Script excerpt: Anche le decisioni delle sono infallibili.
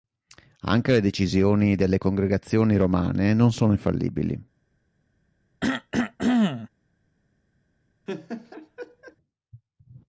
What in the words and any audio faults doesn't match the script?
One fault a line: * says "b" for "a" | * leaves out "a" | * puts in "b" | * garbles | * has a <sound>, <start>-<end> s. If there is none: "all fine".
* puts in "congregazioni romane non"
* has a cough, 5.6-6.7 s
* has a laugh, 8.1-9.2 s